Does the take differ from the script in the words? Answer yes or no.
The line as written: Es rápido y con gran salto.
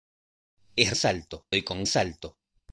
yes